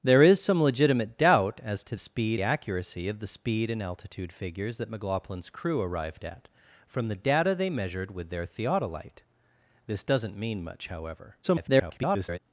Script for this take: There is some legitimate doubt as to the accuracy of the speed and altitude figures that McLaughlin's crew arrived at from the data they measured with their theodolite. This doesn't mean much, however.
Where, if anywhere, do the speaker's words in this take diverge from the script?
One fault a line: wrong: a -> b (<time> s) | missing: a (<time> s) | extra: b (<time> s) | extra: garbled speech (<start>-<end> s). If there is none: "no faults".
wrong: the -> speed (2.0 s)
extra: garbled speech (11.4-12.4 s)